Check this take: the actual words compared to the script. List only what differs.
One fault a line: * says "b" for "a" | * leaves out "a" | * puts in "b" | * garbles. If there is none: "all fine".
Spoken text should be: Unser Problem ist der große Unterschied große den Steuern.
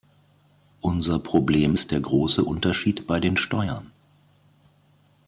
* says "bei" for "große"